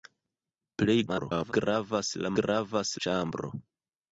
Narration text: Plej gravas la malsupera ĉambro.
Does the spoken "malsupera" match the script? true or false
false